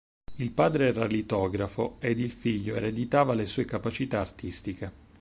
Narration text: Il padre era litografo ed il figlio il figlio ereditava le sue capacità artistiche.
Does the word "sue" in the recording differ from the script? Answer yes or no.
no